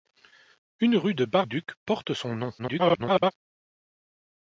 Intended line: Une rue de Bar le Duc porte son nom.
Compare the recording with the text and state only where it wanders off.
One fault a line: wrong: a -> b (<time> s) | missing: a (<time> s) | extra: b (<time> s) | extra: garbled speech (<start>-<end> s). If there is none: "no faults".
missing: le (1.5 s)
extra: garbled speech (2.6-3.3 s)